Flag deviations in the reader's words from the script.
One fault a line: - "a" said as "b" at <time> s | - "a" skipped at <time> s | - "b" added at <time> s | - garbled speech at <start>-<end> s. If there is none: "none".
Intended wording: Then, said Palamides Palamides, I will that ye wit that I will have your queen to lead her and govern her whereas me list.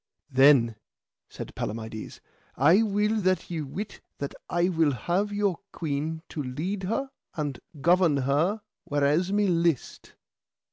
- "Palamides" skipped at 2.2 s